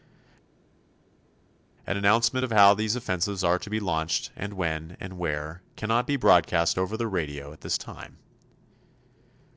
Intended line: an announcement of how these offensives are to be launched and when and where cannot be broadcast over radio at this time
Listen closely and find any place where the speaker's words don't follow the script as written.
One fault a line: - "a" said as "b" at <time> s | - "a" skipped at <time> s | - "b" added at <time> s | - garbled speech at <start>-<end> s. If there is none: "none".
- "the" added at 7.0 s